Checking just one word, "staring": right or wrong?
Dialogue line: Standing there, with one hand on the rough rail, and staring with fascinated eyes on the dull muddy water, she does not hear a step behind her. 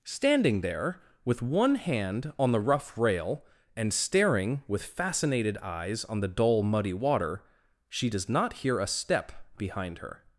right